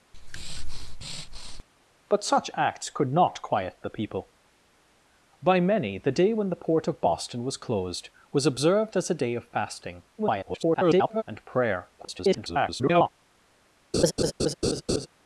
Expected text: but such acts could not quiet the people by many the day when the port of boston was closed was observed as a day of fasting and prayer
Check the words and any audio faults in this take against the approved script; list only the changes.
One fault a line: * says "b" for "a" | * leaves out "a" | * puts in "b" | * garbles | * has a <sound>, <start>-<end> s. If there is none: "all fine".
* has a breath, 0.1-1.6 s
* garbles
* garbles
* has a laugh, 13.9-15.1 s